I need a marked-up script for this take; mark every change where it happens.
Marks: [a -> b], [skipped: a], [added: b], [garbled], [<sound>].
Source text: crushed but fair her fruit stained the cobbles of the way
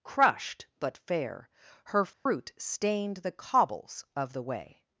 crushed but fair her fruit [dropout] stained the cobbles of the way